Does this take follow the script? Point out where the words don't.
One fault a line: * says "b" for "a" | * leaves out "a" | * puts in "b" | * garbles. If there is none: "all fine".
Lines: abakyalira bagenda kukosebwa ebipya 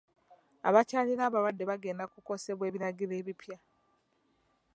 * puts in "abalwadde"
* puts in "ebiragiro"